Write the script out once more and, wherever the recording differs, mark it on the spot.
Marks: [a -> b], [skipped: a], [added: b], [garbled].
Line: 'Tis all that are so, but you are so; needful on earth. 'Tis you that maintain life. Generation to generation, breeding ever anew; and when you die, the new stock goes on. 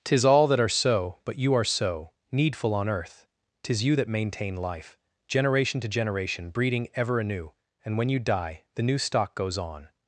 'Tis all that are so, but you are so; needful on earth. 'Tis you that maintain life. Generation to generation, breeding ever anew; and when you die, the new stock goes on.